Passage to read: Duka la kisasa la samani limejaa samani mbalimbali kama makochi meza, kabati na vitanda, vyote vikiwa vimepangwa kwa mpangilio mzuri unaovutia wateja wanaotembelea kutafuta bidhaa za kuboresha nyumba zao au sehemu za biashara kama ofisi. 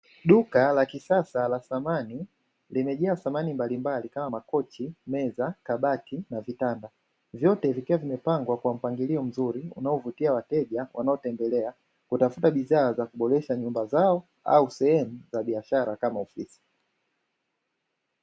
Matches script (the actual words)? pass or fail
pass